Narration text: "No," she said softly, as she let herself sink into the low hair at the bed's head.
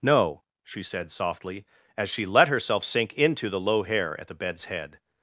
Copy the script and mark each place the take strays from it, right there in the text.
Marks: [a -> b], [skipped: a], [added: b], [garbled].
"No," she said softly, as she let herself sink into the low hair at the bed's head.